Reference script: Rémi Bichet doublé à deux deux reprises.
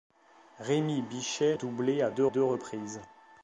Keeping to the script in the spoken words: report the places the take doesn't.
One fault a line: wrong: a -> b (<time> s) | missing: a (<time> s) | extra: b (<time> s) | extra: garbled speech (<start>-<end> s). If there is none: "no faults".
no faults